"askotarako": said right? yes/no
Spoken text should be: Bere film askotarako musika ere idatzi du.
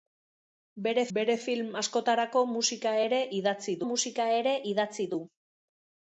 yes